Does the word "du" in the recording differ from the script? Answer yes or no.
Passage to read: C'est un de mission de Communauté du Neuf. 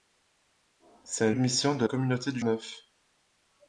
no